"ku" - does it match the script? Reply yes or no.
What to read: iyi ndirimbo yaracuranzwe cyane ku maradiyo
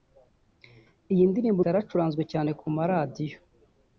yes